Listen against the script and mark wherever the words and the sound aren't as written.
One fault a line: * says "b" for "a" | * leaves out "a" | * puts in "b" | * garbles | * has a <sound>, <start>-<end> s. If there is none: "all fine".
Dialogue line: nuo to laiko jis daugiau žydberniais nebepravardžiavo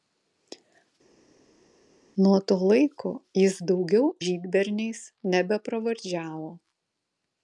all fine